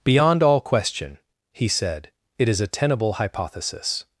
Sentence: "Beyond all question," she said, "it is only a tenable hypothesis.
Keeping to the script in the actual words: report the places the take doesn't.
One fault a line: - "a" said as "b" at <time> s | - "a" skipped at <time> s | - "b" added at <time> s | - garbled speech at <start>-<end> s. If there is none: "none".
- "she" said as "he" at 1.5 s
- "only" skipped at 2.6 s